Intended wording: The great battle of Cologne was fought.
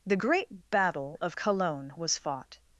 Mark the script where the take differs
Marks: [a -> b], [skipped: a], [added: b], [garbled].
The great battle of Cologne was fought.